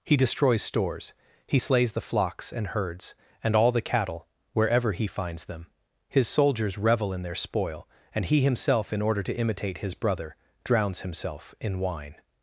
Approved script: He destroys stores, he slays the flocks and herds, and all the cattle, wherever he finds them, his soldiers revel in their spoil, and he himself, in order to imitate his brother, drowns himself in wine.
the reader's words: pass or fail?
pass